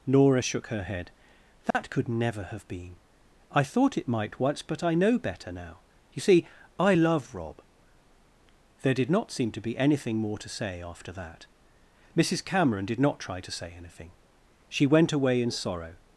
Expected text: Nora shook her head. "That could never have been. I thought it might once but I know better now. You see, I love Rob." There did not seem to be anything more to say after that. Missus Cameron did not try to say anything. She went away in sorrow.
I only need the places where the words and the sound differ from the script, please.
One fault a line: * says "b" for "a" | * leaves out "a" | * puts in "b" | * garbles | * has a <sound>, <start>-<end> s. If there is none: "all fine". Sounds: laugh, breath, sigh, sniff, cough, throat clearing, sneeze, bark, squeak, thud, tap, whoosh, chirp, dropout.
* has a dropout, 1.7-1.7 s